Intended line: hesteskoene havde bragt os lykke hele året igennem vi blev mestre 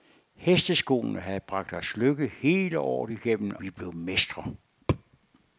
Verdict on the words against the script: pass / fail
pass